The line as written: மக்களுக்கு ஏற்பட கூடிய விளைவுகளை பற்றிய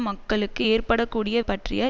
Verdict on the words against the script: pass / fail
fail